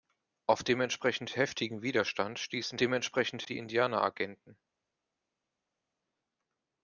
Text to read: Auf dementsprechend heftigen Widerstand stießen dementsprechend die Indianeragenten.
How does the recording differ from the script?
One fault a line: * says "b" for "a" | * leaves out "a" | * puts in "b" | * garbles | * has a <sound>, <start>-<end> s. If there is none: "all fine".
all fine